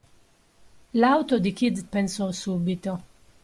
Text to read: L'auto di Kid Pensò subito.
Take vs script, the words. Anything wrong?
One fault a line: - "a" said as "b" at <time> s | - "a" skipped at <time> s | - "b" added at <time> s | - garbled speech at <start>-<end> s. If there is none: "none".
none